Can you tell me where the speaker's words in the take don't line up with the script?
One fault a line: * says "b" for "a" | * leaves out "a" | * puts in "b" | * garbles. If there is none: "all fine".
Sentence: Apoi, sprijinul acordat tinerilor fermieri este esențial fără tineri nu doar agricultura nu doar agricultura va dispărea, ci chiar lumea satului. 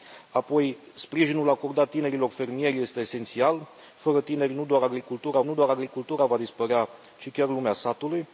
all fine